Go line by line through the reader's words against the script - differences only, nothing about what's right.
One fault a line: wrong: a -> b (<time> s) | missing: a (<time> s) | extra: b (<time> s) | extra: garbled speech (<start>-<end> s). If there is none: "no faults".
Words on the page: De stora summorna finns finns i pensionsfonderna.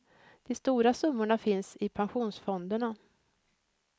missing: finns (1.8 s)